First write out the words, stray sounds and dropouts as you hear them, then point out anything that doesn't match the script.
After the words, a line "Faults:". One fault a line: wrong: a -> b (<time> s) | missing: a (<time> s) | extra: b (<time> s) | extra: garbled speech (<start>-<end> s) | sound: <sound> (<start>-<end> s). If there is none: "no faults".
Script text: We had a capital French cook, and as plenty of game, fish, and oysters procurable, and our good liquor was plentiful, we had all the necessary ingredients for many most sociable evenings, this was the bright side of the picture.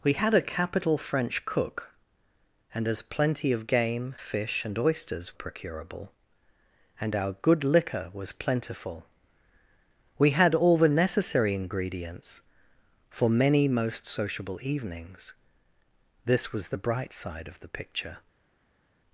We had a capital French cook, and as plenty of game, fish, and oysters procurable, and our good liquor was plentiful, we had all the necessary ingredients for many most sociable evenings, this was the bright side of the picture.
Faults:
no faults